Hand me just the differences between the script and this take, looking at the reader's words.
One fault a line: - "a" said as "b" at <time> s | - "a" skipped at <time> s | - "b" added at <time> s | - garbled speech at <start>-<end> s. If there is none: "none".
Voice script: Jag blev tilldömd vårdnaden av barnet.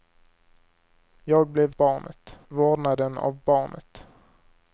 - "tilldömd" said as "barnet" at 1.8 s